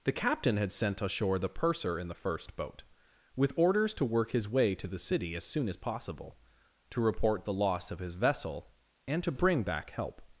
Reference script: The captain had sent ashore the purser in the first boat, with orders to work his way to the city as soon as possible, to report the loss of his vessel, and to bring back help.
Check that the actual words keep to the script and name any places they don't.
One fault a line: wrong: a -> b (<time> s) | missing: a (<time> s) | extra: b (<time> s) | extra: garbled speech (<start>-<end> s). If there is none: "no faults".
no faults